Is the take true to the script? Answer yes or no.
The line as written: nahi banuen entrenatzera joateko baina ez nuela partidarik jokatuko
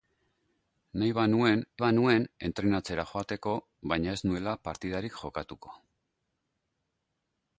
no